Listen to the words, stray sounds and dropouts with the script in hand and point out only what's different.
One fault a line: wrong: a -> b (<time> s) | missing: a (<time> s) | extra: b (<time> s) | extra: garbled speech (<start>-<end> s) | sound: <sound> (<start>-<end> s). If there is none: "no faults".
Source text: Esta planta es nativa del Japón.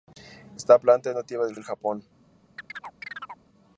extra: del (1.5 s)
sound: chirp (2.6-3.5 s)